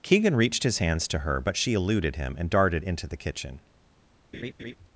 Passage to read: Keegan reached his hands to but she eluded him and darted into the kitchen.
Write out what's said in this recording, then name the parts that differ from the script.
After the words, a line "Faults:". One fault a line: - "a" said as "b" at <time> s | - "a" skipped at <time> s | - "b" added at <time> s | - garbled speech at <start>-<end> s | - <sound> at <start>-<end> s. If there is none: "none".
Keegan reached his hands to her but she eluded him and darted into the kitchen.
Faults:
- "her" added at 1.2 s
- laugh at 4.3-4.8 s